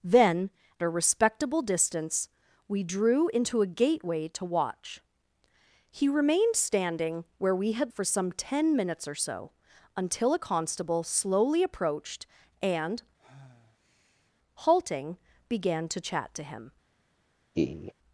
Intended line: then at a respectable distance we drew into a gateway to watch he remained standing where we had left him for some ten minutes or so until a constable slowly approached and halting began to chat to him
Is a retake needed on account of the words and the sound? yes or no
yes